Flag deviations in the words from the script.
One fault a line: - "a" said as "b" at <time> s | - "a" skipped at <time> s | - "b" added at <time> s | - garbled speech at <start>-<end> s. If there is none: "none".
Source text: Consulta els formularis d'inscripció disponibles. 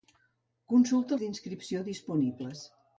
- "els formularis" skipped at 1.1 s